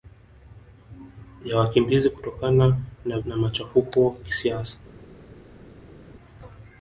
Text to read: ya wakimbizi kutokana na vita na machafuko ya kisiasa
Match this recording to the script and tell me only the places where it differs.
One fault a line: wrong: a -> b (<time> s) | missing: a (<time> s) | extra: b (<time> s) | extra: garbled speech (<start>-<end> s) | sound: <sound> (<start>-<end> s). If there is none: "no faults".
missing: vita (3.2 s)
missing: ya (4.2 s)